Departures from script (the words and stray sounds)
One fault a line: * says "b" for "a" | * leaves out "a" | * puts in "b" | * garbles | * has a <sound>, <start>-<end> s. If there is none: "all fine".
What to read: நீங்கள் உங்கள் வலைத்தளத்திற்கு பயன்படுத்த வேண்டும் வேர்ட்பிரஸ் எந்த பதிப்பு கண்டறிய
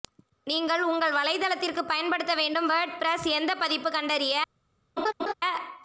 * has a laugh, 5.0-5.3 s